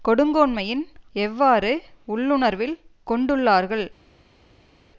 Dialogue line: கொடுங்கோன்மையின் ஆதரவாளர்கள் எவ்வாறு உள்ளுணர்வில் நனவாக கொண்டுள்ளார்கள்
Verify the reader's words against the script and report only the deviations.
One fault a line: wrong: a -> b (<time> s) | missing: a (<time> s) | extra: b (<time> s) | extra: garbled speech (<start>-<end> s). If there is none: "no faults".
missing: ஆதரவாளர்கள் (0.8 s)
missing: நனவாக (2.8 s)